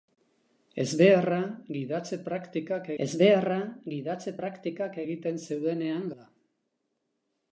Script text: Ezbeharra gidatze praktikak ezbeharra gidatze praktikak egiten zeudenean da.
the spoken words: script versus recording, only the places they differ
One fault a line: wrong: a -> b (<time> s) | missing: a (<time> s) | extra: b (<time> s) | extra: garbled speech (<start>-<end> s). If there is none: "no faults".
no faults